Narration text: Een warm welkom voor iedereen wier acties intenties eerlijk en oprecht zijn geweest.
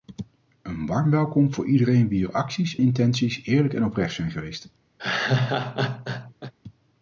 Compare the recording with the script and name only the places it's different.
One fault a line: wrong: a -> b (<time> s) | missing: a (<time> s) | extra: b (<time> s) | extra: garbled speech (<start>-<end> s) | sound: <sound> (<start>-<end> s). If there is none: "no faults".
sound: laugh (5.0-6.5 s)